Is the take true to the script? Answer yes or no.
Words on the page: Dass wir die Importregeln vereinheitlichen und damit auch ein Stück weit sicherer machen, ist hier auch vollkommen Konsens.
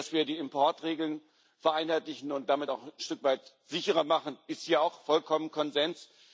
yes